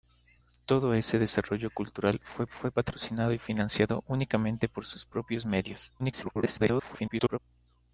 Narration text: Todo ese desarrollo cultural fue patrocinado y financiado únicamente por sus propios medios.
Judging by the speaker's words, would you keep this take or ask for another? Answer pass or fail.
fail